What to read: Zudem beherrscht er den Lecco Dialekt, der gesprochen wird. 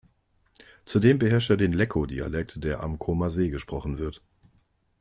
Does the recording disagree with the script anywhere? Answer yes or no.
yes